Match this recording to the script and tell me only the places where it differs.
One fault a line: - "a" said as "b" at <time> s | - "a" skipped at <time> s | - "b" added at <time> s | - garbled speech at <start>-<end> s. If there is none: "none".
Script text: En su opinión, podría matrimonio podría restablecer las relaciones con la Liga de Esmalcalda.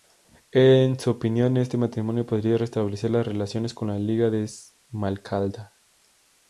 - "podría" said as "este" at 1.6 s